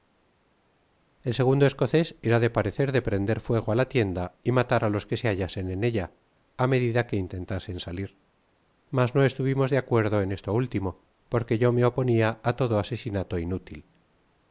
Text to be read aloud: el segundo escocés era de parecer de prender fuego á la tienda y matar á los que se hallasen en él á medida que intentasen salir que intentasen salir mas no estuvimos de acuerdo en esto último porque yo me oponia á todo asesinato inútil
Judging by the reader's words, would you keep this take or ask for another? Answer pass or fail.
fail